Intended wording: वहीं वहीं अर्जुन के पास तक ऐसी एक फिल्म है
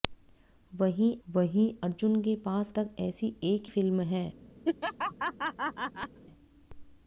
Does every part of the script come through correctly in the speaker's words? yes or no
yes